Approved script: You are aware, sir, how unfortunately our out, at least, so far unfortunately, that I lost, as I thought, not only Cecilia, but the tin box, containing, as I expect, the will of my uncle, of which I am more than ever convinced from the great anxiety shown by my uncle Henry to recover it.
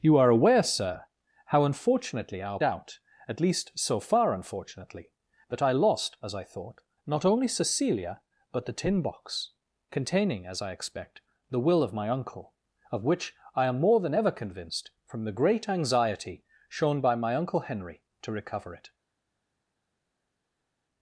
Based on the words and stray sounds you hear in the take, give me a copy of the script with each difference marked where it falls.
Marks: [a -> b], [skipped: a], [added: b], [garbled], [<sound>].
You are aware, sir, how unfortunately our out, at least, so far unfortunately, that I lost, as I thought, not only Cecilia, but the tin box, containing, as I expect, the will of my uncle, of which I am more than ever convinced from the great anxiety shown by my uncle Henry to recover it.